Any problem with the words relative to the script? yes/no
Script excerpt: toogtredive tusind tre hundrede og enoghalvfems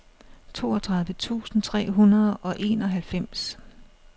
no